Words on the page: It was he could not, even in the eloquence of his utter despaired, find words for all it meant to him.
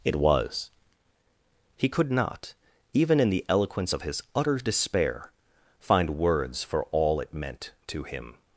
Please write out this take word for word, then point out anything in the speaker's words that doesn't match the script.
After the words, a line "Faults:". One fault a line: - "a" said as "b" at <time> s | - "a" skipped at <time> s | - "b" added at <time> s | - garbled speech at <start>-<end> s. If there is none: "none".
It was he could not, even in the eloquence of his utter despair, find words for all it meant to him.
Faults:
- "despaired" said as "despair" at 4.6 s